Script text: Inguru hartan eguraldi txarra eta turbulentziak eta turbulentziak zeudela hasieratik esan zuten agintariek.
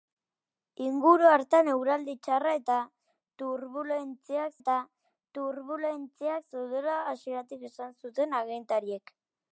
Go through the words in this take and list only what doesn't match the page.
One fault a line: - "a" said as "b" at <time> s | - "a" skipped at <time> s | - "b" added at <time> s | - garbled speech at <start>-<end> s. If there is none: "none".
none